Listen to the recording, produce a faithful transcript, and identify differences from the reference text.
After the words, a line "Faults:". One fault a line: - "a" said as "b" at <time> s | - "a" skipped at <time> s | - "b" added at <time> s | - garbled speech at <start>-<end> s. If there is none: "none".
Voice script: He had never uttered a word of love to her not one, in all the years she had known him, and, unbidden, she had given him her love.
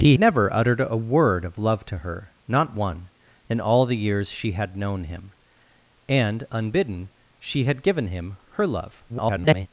He never uttered a word of love to her not one, in all the years she had known him, and, unbidden, she had given him her love. [garbled]
Faults:
- "had" skipped at 0.2 s
- garbled speech at 9.1-9.7 s